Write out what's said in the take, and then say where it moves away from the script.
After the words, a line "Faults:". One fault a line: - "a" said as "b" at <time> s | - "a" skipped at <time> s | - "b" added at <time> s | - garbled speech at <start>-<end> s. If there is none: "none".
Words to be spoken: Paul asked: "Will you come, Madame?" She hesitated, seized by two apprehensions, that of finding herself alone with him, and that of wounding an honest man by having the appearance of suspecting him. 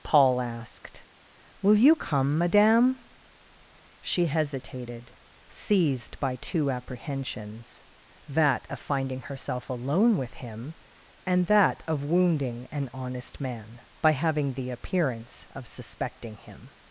Paul asked: "Will you come, Madame?" She hesitated, seized by two apprehensions, that of finding herself alone with him, and that of wounding an honest man by having the appearance of suspecting him.
Faults:
none